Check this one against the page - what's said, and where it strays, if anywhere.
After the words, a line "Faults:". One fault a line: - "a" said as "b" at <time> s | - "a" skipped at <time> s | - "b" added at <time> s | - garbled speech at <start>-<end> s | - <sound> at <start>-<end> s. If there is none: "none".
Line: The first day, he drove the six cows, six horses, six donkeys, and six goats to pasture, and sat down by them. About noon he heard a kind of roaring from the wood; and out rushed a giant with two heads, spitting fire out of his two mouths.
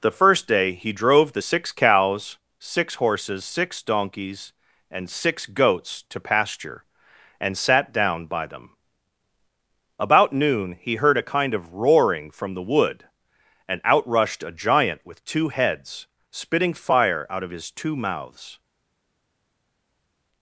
The first day, he drove the six cows, six horses, six donkeys, and six goats to pasture, and sat down by them. About noon he heard a kind of roaring from the wood; and out rushed a giant with two heads, spitting fire out of his two mouths.
Faults:
none